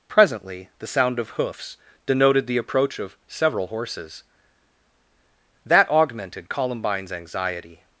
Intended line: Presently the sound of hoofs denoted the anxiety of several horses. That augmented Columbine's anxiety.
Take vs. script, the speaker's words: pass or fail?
fail